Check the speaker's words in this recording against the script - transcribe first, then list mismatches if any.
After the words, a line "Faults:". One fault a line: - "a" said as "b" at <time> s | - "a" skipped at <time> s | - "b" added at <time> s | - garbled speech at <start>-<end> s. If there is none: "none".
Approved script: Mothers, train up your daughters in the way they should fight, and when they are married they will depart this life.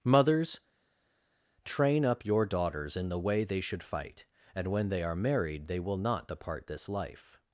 Mothers, train up your daughters in the way they should fight, and when they are married they will not depart this life.
Faults:
- "not" added at 6.0 s